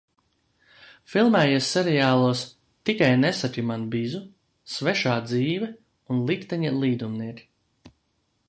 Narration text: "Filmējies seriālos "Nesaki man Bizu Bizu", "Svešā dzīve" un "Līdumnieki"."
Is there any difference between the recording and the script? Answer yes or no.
yes